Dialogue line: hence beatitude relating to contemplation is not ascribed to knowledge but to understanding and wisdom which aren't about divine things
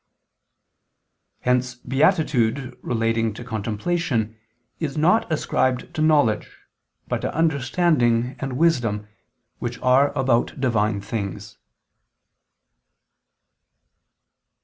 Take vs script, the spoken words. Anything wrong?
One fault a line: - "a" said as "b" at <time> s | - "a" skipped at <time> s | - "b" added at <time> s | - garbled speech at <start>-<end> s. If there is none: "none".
- "aren't" said as "are" at 9.8 s